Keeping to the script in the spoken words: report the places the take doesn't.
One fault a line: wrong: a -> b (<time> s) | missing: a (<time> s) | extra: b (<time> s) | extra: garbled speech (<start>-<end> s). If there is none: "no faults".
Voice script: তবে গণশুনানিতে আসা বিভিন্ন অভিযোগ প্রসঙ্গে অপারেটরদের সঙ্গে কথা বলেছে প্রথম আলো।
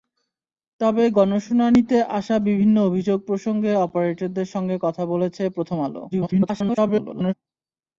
extra: garbled speech (6.1-7.3 s)